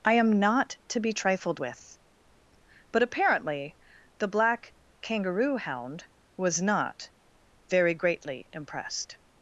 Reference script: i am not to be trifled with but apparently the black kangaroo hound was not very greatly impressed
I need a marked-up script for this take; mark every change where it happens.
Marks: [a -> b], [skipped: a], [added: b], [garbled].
i am not to be trifled with but apparently the black kangaroo hound was not very greatly impressed